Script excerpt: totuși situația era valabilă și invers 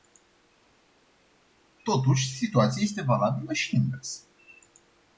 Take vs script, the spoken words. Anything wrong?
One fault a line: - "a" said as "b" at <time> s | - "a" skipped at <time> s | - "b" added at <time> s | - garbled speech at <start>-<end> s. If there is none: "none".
- "era" said as "este" at 2.8 s